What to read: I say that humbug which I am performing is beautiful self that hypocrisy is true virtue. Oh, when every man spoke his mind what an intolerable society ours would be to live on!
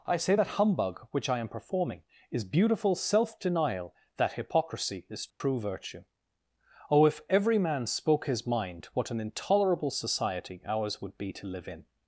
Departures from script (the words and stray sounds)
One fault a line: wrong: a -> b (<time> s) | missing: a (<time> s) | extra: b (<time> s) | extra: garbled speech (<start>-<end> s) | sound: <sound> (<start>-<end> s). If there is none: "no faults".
extra: denial (3.4 s)
sound: dropout (5.3-5.4 s)
wrong: when -> if (7.0 s)
wrong: on -> in (11.7 s)